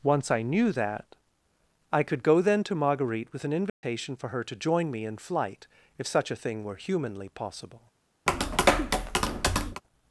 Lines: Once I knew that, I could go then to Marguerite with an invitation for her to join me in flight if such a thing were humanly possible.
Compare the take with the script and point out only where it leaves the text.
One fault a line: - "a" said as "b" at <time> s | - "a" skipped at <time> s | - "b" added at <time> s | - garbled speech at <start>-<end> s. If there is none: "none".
none